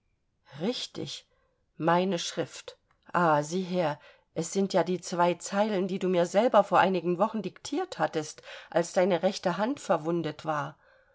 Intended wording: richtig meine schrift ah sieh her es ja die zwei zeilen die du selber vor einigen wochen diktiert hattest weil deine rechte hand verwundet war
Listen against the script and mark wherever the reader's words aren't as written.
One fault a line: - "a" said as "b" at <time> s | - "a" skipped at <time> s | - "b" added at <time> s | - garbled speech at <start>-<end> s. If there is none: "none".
- "sind" added at 4.5 s
- "mir" added at 6.1 s
- "weil" said as "als" at 8.7 s